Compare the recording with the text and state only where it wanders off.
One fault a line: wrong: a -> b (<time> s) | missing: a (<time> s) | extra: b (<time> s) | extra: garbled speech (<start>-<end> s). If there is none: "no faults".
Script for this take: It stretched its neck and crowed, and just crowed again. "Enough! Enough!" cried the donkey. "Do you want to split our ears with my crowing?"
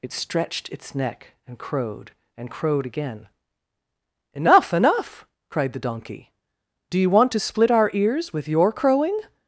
missing: just (2.5 s)
wrong: my -> your (8.5 s)